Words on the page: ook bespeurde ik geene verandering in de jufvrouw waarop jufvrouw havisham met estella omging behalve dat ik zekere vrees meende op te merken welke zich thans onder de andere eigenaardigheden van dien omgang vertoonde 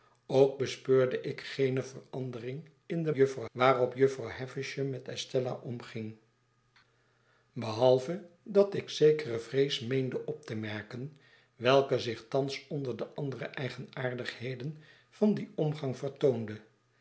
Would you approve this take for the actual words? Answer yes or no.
yes